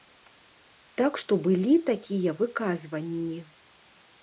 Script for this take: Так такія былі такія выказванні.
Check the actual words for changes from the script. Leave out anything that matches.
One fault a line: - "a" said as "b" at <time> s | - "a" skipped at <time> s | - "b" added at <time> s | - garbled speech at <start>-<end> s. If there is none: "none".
- "такія" said as "што" at 1.2 s